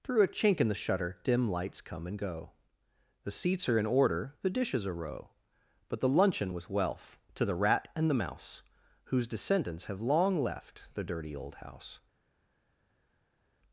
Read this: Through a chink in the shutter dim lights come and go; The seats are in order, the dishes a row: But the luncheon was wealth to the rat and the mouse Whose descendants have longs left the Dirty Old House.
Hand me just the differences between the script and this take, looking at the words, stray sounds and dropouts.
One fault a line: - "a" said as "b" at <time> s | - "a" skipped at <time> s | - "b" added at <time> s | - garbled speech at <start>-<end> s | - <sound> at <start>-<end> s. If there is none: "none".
- "longs" said as "long" at 10.0 s